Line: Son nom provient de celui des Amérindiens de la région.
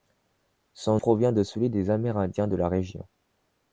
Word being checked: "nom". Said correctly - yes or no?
no